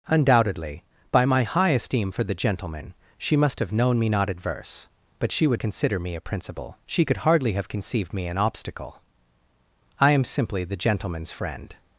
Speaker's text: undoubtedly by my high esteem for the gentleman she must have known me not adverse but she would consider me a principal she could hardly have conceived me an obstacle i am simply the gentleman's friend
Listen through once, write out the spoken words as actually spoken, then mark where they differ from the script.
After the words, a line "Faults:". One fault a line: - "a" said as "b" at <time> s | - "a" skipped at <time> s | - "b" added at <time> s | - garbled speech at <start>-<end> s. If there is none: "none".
undoubtedly by my high esteem for the gentleman she must have known me not adverse but she would consider me a principal she could hardly have conceived me an obstacle i am simply the gentleman's friend
Faults:
none